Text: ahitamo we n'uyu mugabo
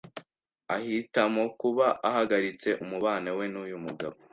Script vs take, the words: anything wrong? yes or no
yes